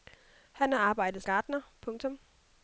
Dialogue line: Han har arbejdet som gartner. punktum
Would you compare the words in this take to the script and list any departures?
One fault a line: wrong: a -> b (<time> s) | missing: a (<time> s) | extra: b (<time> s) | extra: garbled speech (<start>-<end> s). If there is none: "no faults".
missing: som (1.2 s)